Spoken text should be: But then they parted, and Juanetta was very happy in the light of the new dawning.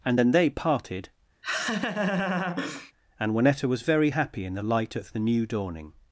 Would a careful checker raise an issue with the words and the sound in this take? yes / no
yes